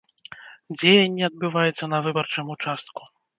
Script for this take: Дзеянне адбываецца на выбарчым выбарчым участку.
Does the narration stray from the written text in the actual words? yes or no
yes